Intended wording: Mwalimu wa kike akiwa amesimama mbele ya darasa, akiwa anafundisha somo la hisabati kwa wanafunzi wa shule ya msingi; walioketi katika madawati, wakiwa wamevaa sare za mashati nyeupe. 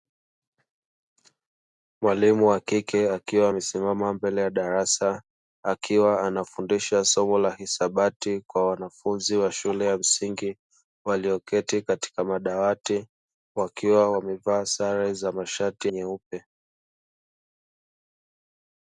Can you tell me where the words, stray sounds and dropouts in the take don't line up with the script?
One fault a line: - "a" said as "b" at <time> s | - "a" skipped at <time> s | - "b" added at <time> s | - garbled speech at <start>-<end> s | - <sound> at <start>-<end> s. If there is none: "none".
none